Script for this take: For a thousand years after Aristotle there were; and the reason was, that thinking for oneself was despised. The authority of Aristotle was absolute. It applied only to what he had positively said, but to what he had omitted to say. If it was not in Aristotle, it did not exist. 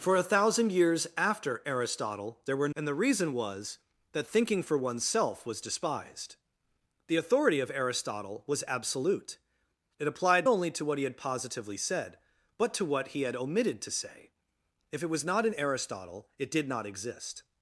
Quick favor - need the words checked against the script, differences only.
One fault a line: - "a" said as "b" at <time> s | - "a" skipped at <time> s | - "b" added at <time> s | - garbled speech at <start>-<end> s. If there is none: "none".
none